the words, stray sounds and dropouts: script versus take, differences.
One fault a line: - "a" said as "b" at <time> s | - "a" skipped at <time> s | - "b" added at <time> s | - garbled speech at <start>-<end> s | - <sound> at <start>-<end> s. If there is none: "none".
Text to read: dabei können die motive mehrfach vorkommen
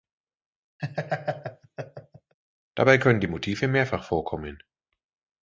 - laugh at 0.8-2.3 s